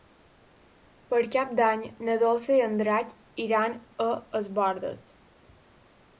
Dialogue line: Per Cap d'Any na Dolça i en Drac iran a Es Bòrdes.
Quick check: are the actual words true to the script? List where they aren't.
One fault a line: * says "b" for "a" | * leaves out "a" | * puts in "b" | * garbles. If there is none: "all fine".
all fine